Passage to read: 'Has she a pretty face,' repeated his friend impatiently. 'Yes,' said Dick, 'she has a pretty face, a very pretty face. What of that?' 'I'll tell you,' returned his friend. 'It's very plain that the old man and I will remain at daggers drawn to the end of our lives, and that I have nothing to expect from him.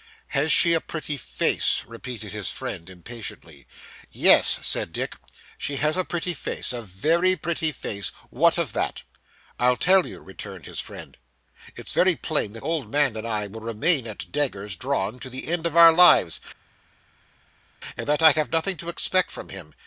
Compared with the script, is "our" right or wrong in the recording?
right